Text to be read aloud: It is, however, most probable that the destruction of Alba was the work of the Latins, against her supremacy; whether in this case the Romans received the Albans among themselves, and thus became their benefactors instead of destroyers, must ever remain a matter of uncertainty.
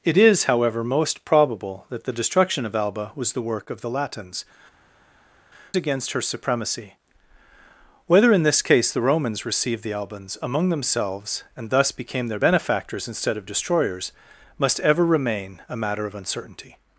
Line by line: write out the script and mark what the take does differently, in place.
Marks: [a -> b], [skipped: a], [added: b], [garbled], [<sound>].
It is, however, most probable that the destruction of Alba was the work of the Latins, against her supremacy; whether in this case the Romans received the Albans among themselves, and thus became their benefactors instead of destroyers, must ever remain a matter of uncertainty.